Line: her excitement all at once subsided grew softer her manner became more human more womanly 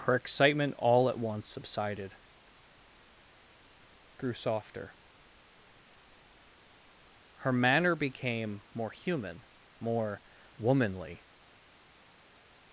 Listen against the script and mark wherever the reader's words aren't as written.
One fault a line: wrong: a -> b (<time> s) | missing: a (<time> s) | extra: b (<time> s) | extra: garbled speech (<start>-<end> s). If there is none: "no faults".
no faults